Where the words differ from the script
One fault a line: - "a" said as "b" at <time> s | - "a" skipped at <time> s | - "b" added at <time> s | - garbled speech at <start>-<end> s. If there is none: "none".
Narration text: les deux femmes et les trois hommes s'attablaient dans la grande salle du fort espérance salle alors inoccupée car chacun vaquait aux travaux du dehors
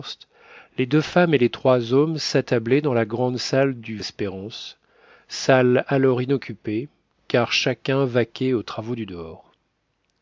- "fort" skipped at 4.0 s